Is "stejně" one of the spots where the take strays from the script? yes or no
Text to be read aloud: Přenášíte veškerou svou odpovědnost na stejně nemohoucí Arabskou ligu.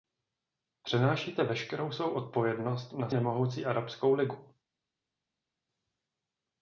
yes